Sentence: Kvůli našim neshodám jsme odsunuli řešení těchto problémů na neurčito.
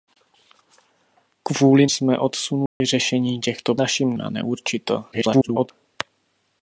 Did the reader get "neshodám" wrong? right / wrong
wrong